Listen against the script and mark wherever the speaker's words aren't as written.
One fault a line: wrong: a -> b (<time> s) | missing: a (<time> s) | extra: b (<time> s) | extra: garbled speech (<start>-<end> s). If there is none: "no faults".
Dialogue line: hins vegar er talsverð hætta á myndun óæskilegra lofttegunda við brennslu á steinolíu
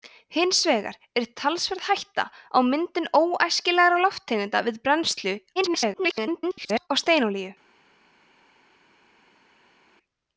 extra: garbled speech (5.6-6.9 s)